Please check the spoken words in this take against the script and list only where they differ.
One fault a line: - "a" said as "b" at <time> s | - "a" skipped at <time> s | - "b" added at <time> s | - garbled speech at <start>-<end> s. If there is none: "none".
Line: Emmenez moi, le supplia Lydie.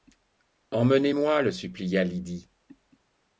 none